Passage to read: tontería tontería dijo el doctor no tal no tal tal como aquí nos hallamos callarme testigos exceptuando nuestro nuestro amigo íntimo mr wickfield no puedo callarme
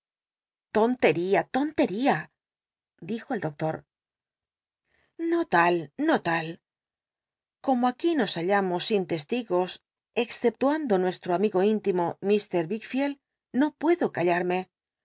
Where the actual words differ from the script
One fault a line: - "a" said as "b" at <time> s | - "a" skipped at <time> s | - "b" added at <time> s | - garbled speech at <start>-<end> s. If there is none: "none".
- "tal" skipped at 6.5 s
- "callarme" said as "sin" at 8.9 s
- "nuestro" skipped at 11.3 s